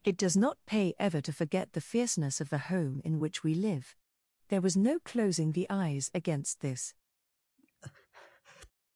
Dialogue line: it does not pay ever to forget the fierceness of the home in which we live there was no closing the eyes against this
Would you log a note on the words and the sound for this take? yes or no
yes